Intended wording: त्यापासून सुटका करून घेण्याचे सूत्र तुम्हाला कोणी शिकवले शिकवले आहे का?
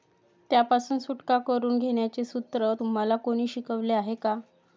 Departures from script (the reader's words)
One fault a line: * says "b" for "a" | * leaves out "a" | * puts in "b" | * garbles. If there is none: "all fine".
* leaves out "शिकवले"